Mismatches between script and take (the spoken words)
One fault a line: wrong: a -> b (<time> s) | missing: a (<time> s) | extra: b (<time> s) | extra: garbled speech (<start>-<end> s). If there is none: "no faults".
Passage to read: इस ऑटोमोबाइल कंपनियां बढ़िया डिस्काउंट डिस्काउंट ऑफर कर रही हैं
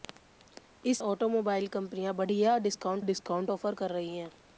no faults